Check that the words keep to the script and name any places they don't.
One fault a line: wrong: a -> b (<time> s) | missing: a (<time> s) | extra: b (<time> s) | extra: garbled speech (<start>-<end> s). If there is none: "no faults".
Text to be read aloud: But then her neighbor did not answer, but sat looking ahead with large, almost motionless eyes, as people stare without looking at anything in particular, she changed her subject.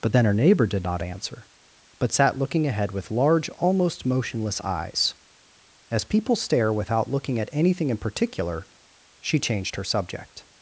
no faults